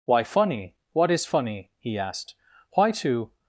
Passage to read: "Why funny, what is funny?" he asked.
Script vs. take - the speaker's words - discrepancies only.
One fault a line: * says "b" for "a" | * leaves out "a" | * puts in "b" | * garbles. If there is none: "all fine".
* puts in "Why to"